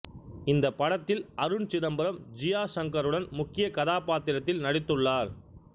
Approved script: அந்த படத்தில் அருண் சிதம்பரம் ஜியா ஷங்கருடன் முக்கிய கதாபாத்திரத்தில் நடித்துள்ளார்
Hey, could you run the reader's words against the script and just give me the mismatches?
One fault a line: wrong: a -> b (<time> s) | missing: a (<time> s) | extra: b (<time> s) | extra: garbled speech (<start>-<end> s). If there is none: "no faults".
wrong: அந்த -> இந்த (0.5 s)